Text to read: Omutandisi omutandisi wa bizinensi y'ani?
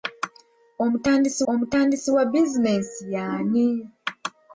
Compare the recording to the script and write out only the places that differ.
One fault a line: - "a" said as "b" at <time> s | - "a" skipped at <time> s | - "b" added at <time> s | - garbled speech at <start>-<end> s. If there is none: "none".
none